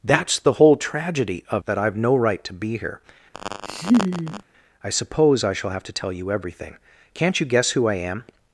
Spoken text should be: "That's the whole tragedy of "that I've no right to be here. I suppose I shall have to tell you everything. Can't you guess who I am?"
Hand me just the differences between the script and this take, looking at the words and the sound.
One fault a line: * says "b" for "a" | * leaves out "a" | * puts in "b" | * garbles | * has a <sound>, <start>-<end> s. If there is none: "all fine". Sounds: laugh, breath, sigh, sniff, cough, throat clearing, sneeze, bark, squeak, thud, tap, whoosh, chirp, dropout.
* has a laugh, 3.3-4.4 s